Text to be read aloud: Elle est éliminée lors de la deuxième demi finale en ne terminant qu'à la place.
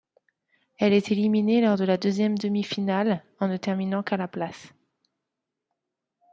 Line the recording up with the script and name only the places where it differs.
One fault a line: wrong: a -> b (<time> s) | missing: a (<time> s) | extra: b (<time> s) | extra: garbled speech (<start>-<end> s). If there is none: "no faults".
no faults